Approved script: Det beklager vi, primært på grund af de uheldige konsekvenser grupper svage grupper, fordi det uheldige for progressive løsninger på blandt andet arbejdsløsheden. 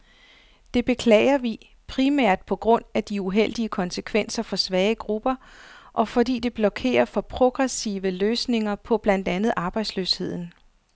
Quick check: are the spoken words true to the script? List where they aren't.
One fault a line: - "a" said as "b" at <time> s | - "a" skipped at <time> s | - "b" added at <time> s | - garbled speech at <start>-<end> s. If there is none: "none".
- "grupper" said as "for" at 4.4 s
- "og" added at 5.9 s
- "uheldige" said as "blokerer" at 6.5 s